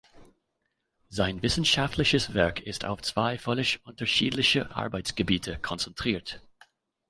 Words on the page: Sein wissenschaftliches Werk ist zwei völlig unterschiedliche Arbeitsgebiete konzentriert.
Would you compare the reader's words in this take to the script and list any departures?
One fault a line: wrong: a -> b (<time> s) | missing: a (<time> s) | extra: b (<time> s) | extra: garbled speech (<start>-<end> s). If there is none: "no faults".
extra: auf (2.9 s)